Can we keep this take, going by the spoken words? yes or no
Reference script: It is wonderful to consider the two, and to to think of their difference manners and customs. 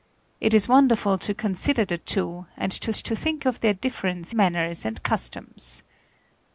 yes